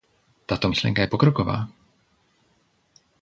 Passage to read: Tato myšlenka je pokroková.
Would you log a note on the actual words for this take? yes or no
no